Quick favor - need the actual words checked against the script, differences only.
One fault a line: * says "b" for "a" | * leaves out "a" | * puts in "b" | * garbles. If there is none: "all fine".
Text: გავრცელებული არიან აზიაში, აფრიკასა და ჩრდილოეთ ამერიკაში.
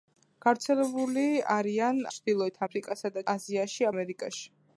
* says "ჩრდილოეთ" for "აზიაში"
* says "აზიაში" for "ჩრდილოეთ"